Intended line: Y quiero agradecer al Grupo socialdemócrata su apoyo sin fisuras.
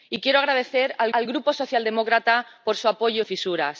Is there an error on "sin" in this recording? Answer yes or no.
yes